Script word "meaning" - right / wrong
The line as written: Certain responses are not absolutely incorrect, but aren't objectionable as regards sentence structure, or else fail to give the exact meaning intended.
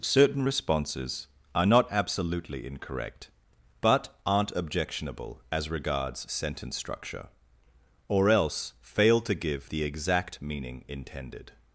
right